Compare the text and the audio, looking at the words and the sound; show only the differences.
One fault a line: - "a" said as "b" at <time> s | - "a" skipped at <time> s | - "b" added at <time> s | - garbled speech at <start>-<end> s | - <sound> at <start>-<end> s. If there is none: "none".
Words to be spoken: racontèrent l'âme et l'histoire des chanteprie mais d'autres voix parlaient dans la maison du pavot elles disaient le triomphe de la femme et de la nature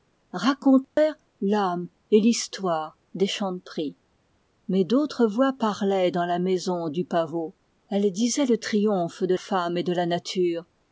- dropout at 0.8-1.0 s
- "la" skipped at 9.3 s